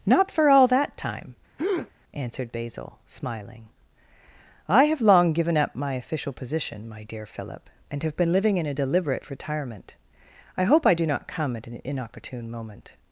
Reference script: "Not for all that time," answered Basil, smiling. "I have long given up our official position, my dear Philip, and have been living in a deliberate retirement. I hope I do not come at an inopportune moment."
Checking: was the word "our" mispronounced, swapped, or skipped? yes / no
yes